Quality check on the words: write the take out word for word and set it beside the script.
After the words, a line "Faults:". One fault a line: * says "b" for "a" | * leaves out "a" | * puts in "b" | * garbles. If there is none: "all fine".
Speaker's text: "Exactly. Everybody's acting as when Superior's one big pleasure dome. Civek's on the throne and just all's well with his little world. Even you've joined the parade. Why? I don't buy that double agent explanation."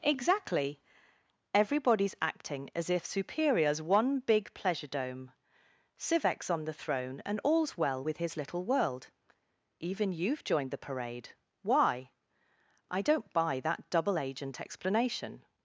"Exactly. Everybody's acting as if Superior's one big pleasure dome. Civek's on the throne and all's well with his little world. Even you've joined the parade. Why? I don't buy that double agent explanation."
Faults:
* says "if" for "when"
* leaves out "just"